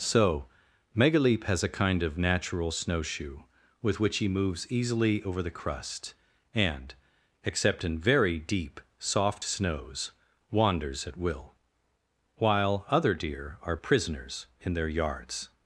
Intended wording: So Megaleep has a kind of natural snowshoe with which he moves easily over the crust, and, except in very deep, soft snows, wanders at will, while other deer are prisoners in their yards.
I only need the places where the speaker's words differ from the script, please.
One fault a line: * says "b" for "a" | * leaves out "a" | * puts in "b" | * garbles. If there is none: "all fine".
all fine